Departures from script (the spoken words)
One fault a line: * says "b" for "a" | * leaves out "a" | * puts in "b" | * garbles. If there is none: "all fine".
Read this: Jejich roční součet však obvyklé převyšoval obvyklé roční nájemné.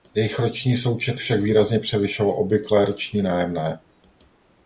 * says "výrazně" for "obvyklé"